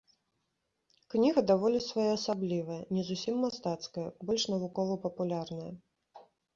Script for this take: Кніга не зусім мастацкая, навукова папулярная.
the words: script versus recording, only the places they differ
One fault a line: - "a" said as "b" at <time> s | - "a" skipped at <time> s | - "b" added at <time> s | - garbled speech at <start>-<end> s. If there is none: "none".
- "даволі своеасаблівая" added at 1.5 s
- "больш" added at 4.3 s